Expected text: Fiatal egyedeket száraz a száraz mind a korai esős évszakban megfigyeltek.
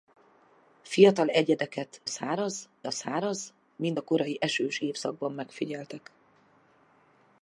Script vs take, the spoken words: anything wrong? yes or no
no